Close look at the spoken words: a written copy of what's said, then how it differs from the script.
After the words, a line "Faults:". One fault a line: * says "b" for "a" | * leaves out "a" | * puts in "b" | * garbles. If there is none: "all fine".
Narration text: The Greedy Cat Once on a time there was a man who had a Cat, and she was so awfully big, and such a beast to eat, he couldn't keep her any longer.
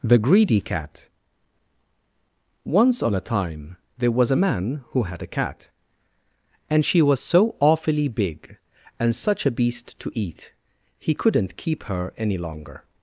The Greedy Cat Once on a time there was a man who had a Cat, and she was so awfully big, and such a beast to eat, he couldn't keep her any longer.
Faults:
all fine